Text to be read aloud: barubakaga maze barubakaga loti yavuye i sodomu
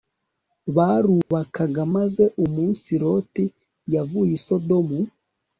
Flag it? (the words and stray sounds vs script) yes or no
yes